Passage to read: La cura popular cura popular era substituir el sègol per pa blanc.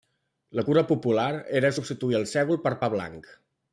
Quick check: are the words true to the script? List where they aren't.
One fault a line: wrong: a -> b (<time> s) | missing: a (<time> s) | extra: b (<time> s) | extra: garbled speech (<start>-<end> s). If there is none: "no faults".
missing: cura popular (1.3 s)